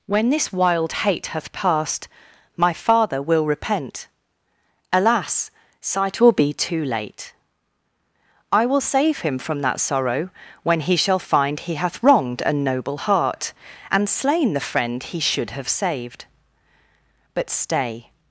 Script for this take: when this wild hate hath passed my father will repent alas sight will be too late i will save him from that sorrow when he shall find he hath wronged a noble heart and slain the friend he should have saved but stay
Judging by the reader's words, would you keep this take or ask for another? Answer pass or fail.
pass